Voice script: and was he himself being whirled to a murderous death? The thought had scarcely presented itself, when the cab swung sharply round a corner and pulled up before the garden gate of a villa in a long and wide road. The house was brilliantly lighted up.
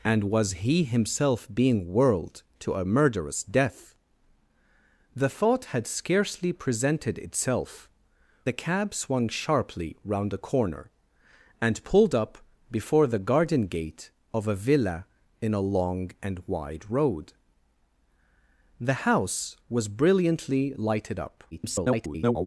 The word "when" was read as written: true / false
false